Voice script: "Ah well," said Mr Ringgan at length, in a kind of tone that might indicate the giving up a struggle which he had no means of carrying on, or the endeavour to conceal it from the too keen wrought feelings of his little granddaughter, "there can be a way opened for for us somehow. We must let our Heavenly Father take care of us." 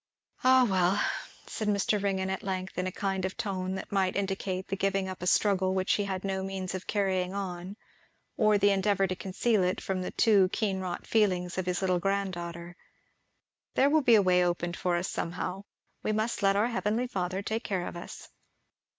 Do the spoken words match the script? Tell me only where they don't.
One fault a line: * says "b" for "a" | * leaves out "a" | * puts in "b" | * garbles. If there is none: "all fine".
* says "will" for "can"
* leaves out "for"